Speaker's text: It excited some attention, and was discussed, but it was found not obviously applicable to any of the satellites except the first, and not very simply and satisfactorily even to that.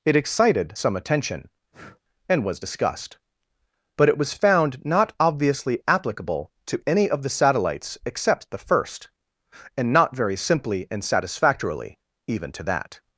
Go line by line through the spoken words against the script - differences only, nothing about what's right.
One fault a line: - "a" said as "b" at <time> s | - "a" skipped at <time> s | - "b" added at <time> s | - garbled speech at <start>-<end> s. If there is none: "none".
none